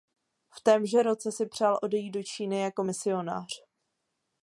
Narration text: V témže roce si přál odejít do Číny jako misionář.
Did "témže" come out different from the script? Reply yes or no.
no